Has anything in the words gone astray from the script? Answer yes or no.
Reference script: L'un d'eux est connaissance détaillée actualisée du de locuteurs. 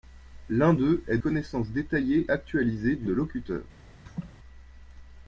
no